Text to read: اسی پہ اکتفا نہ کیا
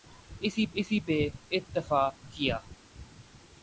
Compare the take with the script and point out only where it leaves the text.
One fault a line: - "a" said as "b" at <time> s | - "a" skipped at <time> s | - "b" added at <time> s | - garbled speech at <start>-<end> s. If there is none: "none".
- "اسی" added at 0.7 s
- "نہ" skipped at 2.0 s